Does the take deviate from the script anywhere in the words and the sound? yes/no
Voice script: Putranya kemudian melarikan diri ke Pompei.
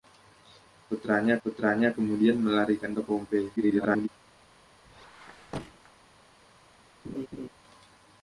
yes